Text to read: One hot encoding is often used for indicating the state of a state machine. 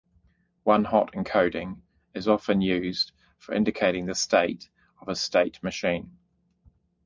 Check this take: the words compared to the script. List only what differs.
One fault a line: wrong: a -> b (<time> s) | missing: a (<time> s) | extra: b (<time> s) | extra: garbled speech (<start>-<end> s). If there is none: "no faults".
no faults